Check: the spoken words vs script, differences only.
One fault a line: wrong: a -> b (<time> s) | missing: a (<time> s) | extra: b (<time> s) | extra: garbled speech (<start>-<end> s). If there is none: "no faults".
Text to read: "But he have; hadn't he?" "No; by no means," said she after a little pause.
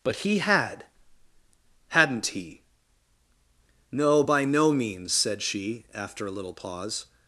wrong: have -> had (0.4 s)